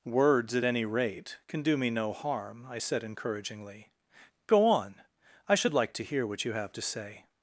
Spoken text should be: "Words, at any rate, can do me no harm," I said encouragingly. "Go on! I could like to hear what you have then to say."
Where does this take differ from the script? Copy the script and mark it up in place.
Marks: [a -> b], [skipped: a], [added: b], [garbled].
"Words, at any rate, can do me no harm," I said encouragingly. "Go on! I [could -> should] like to hear what you have [skipped: then] to say."